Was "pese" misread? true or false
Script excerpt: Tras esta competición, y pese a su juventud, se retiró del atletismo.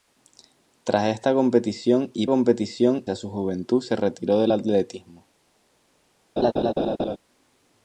true